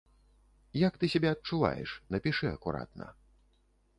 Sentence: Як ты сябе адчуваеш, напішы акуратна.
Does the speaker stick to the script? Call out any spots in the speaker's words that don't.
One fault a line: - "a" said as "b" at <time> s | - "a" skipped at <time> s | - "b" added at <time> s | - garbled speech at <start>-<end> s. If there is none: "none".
none